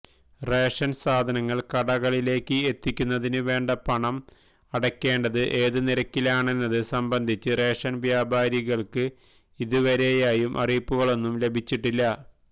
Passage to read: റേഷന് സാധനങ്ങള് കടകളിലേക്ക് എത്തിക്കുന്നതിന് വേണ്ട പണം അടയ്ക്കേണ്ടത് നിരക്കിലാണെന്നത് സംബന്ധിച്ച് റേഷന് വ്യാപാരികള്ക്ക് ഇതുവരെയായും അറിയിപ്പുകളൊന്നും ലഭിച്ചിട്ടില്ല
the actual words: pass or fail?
fail